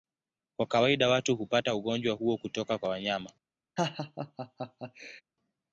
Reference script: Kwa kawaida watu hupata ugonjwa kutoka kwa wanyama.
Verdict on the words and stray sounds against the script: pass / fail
fail